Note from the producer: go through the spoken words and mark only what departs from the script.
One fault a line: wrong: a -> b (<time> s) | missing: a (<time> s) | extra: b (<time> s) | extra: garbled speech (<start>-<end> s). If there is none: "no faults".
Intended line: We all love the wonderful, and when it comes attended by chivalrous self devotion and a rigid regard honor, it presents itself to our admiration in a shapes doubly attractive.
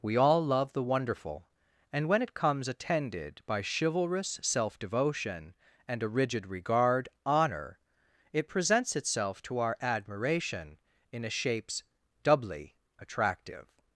no faults